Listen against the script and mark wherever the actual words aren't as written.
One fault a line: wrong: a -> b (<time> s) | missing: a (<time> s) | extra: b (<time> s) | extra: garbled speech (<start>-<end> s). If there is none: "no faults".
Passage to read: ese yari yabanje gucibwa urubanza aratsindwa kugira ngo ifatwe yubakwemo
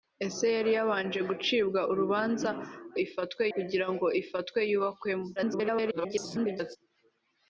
wrong: aratsindwa -> ifatwe (3.0 s)
extra: garbled speech (5.4-6.8 s)